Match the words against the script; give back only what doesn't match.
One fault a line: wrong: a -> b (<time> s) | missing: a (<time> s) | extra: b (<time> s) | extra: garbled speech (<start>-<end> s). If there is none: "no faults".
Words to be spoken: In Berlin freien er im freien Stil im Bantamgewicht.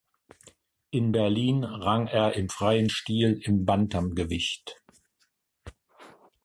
wrong: freien -> rang (1.6 s)